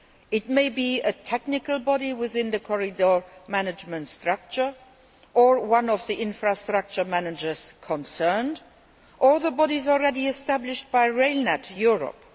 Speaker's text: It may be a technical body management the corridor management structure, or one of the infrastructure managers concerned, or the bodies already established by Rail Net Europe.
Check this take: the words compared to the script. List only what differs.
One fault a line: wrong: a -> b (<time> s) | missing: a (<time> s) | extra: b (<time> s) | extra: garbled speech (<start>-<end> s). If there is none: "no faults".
wrong: management -> within (2.1 s)